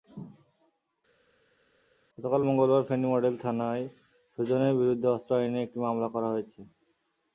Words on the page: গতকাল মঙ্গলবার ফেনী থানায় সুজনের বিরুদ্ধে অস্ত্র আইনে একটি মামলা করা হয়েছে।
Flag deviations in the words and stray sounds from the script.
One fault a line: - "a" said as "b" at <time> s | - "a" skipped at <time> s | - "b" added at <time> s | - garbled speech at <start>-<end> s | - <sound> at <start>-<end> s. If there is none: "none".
- "মডেল" added at 3.1 s